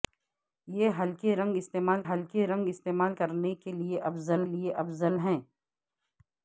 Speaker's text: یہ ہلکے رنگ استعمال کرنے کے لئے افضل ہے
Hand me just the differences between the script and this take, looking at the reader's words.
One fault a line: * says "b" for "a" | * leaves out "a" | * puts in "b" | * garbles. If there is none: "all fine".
* puts in "ہلکے رنگ استعمال"
* puts in "لئے افضل"